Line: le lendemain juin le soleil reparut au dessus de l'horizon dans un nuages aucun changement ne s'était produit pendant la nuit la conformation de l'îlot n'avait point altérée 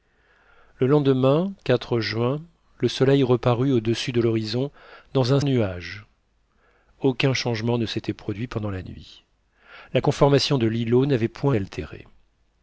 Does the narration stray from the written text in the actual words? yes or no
no